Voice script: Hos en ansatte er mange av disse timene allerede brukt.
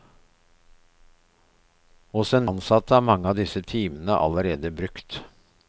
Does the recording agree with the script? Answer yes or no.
yes